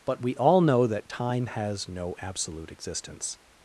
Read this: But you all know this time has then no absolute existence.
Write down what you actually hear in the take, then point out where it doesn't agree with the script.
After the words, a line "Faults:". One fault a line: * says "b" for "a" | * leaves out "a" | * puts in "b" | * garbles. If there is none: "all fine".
But we all know that time has no absolute existence.
Faults:
* says "we" for "you"
* says "that" for "this"
* leaves out "then"